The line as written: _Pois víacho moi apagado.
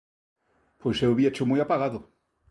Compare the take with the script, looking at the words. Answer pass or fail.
fail